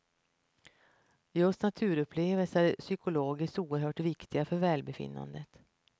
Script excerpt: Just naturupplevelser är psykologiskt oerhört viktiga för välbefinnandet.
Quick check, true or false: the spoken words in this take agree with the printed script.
true